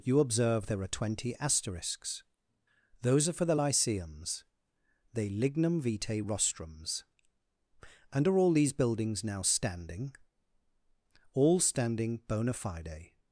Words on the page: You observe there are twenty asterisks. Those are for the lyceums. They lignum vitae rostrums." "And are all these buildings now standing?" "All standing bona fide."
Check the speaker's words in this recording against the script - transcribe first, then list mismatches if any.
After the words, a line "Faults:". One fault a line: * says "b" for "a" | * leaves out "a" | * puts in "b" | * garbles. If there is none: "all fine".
You observe there are twenty asterisks. Those are for the lyceums. They lignum vitae rostrums." "And are all these buildings now standing?" "All standing bona fide."
Faults:
all fine